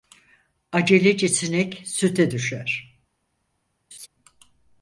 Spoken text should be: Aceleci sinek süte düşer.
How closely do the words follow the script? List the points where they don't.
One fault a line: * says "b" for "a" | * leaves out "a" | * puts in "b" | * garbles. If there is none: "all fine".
all fine